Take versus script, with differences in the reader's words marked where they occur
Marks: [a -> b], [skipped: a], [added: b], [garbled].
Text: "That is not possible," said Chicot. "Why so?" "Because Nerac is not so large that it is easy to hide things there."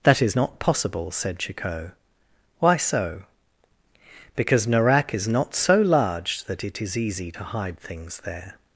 "That is not possible," said Chicot. "Why so?" "Because Nerac is not so large that it is easy to hide things there."